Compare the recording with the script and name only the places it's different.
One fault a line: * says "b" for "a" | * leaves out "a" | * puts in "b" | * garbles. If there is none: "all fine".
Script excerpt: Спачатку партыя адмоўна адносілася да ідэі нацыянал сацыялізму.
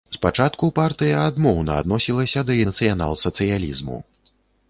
* leaves out "ідэі"